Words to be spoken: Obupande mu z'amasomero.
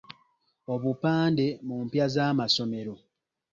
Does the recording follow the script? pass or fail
fail